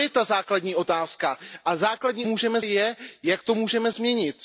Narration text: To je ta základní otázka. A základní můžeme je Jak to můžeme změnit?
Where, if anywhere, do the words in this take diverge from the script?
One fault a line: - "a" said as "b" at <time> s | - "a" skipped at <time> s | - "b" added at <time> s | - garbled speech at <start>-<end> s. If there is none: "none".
none